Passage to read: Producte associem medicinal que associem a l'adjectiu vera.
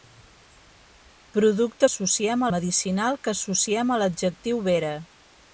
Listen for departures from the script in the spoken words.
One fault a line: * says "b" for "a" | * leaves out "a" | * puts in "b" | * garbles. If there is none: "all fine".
all fine